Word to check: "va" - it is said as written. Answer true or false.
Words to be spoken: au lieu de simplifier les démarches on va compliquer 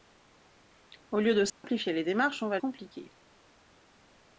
true